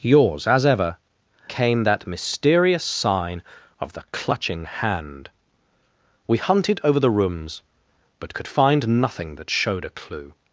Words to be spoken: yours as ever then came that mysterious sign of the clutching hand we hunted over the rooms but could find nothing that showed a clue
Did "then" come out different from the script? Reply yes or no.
yes